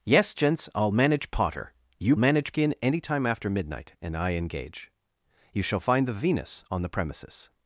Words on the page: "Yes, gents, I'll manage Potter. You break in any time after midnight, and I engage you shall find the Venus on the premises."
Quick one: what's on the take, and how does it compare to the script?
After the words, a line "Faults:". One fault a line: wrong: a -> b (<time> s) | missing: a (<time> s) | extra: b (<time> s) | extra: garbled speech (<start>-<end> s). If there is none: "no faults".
"Yes, gents, I'll manage Potter. You manage in any time after midnight, and I engage you shall find the Venus on the premises."
Faults:
wrong: break -> manage (2.2 s)